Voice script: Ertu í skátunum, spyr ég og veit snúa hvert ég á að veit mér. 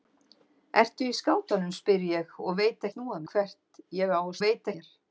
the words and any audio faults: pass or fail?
pass